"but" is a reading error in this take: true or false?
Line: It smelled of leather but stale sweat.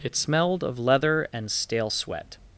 true